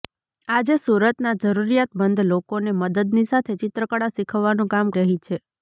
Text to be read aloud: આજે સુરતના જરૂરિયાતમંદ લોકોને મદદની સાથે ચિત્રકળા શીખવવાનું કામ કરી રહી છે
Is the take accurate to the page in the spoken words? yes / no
no